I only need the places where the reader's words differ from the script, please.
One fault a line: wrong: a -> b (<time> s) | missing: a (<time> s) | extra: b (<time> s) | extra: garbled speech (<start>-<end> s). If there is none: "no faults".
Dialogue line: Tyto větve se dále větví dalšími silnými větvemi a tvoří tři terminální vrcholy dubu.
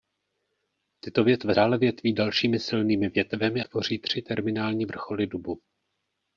missing: se (1.6 s)
missing: a (3.6 s)